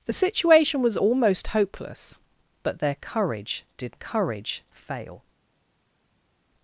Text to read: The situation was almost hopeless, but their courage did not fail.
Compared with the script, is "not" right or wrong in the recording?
wrong